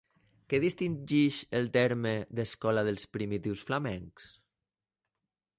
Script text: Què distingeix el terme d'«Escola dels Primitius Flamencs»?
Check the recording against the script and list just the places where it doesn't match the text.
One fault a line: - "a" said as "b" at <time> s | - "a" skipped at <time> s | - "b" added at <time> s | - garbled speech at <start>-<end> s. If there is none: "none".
none